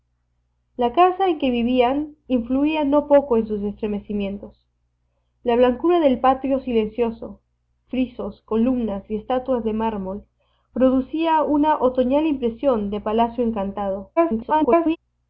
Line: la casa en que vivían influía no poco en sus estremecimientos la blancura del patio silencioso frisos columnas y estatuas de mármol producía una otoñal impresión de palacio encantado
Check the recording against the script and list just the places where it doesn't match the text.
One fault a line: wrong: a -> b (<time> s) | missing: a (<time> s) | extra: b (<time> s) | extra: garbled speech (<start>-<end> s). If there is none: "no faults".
extra: garbled speech (14.2-15.0 s)